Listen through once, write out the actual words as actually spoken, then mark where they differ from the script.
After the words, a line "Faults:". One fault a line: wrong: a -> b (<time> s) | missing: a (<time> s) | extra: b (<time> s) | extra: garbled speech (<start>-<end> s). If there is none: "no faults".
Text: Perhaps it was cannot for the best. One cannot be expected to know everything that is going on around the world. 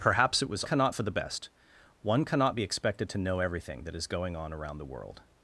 Perhaps it was cannot for the best. One cannot be expected to know everything that is going on around the world.
Faults:
no faults